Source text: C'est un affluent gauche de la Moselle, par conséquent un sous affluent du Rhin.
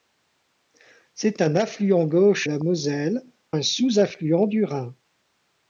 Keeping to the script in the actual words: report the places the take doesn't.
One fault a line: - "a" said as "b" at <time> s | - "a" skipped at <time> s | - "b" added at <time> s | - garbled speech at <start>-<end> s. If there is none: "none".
- "de" skipped at 2.5 s
- "par conséquent" skipped at 3.2 s